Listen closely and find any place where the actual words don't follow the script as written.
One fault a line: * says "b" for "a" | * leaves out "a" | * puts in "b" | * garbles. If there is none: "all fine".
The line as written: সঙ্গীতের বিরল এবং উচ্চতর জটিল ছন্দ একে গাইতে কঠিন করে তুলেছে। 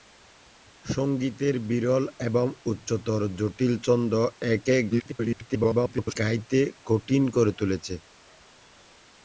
* garbles